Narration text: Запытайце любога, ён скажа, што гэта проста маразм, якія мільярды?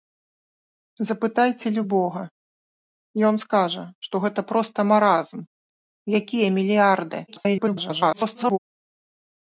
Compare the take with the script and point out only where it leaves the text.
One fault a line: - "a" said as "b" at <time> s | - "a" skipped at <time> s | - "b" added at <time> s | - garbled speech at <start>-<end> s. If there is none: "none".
- garbled speech at 7.3-8.6 s